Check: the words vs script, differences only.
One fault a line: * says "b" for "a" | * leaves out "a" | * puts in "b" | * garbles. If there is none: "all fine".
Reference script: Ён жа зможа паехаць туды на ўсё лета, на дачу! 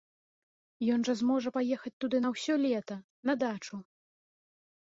all fine